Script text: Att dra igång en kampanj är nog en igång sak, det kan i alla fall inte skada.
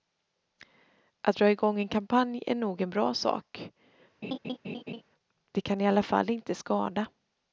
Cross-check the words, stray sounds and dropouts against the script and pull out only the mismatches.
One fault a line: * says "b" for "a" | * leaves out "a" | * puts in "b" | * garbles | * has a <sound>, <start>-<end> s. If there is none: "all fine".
* says "bra" for "igång"
* has a laugh, 4.2-5.0 s